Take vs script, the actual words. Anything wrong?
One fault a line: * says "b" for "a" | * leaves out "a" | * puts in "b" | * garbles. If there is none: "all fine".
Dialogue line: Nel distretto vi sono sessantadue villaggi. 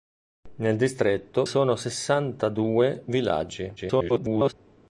* leaves out "vi"
* garbles